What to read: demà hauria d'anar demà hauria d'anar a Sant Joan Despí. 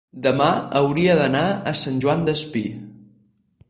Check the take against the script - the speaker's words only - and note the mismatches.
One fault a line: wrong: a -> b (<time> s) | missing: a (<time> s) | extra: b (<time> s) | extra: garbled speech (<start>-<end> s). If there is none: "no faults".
missing: demà hauria d'anar (1.4 s)